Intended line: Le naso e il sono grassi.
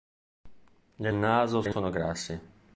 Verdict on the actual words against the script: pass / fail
pass